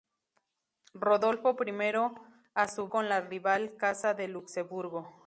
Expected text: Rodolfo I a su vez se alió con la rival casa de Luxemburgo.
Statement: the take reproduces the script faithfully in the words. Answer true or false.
false